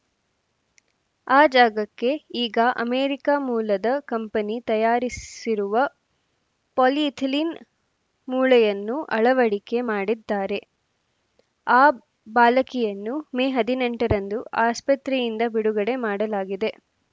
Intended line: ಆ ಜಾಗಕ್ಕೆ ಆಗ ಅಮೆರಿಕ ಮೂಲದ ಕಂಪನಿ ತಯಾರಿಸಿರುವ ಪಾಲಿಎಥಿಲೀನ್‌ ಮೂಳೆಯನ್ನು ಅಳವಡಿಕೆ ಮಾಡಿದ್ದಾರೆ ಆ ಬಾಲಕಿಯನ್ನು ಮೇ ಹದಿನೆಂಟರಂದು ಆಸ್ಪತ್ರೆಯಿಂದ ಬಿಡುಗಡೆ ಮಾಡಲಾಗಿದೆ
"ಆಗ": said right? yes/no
no